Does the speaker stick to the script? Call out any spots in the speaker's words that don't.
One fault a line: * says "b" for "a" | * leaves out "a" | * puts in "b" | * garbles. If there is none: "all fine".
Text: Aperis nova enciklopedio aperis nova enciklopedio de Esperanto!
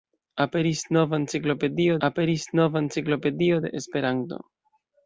all fine